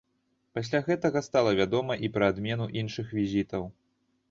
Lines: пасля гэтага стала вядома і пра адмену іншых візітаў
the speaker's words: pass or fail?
pass